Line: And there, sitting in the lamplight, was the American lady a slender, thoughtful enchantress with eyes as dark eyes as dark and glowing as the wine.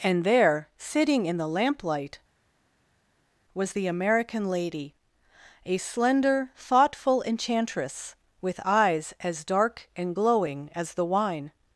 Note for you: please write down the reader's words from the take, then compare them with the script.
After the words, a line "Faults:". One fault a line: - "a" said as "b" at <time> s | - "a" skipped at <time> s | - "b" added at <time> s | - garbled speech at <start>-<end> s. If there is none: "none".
And there, sitting in the lamplight, was the American lady a slender, thoughtful enchantress with eyes as dark and glowing as the wine.
Faults:
- "eyes as dark" skipped at 9.9 s